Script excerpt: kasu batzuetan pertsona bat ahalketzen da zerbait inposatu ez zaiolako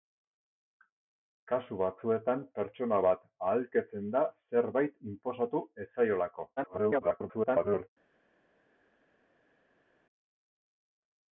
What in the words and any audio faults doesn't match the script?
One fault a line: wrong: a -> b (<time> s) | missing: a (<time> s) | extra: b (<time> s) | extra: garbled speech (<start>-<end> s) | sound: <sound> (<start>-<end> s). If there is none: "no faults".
extra: garbled speech (6.6-7.9 s)